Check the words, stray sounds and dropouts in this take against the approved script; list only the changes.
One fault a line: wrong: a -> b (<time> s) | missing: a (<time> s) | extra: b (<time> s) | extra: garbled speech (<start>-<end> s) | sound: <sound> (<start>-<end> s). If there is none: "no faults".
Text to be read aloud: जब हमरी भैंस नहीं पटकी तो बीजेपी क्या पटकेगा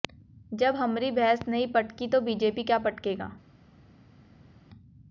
no faults